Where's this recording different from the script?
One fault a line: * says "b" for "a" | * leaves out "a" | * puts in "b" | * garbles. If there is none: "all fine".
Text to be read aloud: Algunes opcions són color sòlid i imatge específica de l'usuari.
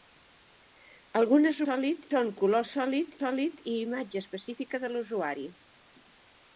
* says "sòlid" for "opcions"
* puts in "sòlid"